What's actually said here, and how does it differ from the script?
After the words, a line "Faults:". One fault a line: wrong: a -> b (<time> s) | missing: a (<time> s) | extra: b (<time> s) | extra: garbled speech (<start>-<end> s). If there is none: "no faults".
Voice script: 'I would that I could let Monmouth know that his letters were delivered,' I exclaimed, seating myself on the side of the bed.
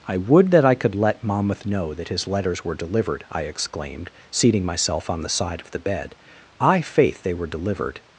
'I would that I could let Monmouth know that his letters were delivered,' I exclaimed, seating myself on the side of the bed. 'I' faith, they were delivered
Faults:
extra: I faith they were delivered (6.6 s)